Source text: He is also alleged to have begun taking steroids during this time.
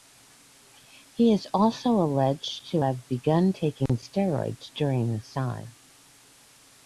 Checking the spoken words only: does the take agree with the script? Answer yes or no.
yes